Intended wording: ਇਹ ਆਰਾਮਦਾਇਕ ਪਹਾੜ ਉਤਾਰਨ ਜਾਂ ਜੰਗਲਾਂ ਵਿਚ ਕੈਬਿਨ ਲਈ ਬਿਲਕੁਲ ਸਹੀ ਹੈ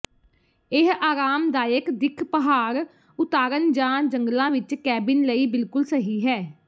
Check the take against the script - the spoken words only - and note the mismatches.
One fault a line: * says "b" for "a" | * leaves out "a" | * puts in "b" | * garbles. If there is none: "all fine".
* puts in "ਦਿੱਖ"